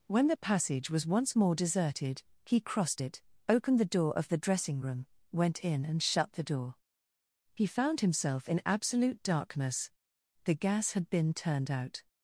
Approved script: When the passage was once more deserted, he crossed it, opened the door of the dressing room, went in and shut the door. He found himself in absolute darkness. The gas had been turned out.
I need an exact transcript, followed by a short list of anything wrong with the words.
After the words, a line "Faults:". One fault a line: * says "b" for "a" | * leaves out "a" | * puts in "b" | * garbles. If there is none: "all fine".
When the passage was once more deserted, he crossed it, opened the door of the dressing room, went in and shut the door. He found himself in absolute darkness. The gas had been turned out.
Faults:
all fine